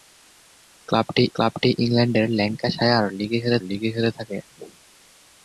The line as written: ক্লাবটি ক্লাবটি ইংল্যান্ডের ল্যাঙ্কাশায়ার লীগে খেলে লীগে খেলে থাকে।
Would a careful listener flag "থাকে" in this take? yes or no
no